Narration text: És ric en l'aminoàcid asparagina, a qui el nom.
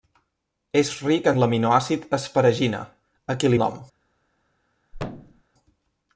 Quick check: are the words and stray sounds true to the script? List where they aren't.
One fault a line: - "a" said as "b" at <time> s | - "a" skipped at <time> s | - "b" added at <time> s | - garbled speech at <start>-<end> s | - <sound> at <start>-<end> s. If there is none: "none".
- thud at 4.9-5.4 s